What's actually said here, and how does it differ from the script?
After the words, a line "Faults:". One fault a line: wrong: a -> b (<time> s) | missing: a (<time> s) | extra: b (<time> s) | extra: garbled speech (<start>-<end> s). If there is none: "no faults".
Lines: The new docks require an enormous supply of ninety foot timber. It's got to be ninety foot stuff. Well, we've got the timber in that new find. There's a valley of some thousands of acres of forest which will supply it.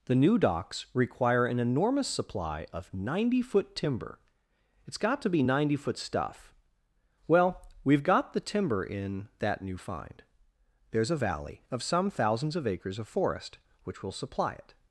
The new docks require an enormous supply of ninety foot timber. It's got to be ninety foot stuff. Well, we've got the timber in that new find. There's a valley of some thousands of acres of forest which will supply it.
Faults:
no faults